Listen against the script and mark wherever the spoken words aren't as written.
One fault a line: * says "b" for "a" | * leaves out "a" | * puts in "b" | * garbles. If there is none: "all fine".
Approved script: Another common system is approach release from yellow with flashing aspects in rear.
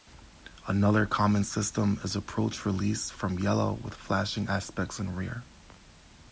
all fine